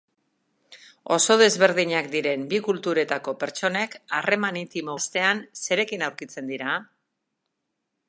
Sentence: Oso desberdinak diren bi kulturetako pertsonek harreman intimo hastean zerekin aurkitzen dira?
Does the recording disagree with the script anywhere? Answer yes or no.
no